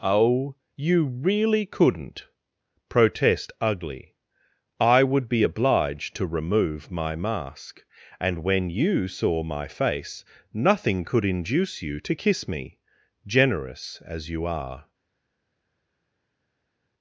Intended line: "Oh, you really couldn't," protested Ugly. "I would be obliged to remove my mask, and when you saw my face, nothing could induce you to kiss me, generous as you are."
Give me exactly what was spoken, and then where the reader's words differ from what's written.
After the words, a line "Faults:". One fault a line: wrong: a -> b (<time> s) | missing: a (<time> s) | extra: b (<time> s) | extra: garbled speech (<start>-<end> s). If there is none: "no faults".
"Oh, you really couldn't," protest Ugly. "I would be obliged to remove my mask, and when you saw my face, nothing could induce you to kiss me, generous as you are."
Faults:
wrong: protested -> protest (2.9 s)